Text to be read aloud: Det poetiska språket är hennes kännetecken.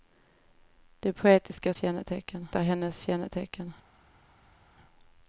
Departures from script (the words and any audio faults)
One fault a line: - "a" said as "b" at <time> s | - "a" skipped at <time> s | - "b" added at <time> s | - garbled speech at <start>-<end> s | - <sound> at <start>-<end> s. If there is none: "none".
- "språket" said as "kännetecken" at 1.8 s